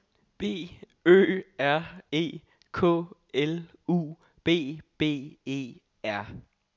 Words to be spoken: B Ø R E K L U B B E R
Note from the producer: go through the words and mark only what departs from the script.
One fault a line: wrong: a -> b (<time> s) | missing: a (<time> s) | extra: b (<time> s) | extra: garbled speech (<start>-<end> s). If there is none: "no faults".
no faults